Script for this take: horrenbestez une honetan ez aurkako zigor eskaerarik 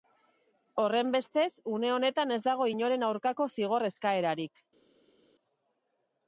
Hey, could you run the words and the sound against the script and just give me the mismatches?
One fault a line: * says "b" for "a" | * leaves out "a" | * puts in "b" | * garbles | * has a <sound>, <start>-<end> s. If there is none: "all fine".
* puts in "dago inoren"